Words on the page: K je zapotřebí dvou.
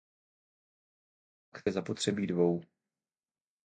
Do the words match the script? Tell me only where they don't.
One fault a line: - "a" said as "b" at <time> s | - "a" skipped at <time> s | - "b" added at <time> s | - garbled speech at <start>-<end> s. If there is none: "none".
none